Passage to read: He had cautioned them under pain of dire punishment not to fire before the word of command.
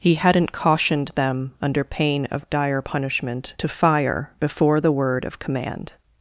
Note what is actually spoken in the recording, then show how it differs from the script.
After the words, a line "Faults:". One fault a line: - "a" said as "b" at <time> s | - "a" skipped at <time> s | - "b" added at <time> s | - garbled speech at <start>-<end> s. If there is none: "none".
He hadn't cautioned them under pain of dire punishment to fire before the word of command.
Faults:
- "had" said as "hadn't" at 0.1 s
- "not" skipped at 3.5 s